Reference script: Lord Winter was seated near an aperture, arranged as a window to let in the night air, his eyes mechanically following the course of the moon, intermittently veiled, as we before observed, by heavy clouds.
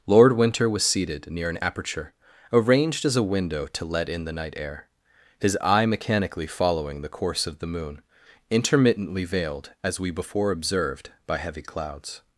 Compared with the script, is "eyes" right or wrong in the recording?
wrong